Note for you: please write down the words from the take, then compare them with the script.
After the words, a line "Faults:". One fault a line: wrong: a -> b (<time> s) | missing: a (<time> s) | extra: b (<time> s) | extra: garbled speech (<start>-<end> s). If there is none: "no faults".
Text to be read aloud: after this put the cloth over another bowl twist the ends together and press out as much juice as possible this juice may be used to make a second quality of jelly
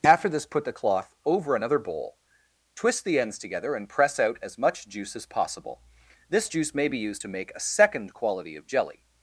after this put the cloth over another bowl twist the ends together and press out as much juice as possible this juice may be used to make a second quality of jelly
Faults:
no faults